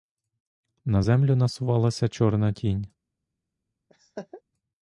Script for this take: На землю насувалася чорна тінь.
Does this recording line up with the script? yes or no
yes